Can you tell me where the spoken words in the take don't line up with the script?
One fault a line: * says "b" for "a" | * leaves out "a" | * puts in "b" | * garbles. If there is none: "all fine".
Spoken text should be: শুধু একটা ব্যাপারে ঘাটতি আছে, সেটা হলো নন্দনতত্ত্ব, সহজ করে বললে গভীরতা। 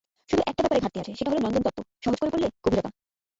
all fine